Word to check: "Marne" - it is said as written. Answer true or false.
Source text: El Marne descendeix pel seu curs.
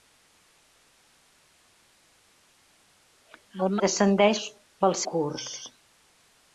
false